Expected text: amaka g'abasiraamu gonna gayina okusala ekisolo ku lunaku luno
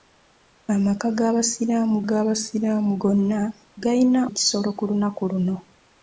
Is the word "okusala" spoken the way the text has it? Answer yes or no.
no